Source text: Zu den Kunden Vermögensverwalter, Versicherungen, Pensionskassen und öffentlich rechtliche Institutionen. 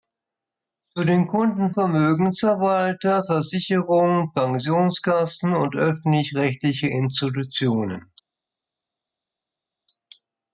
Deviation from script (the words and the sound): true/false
false